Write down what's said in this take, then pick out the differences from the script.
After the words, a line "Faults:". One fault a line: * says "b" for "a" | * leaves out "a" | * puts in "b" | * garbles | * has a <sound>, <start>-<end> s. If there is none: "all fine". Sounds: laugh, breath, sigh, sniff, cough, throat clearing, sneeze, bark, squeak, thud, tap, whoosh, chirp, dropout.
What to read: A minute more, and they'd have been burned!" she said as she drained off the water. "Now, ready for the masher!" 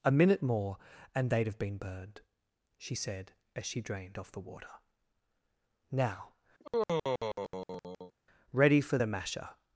A minute more, and they'd have been burned!" she said as she drained off the water. "Now, ready for the masher!"
Faults:
* has a sigh, 6.6-8.1 s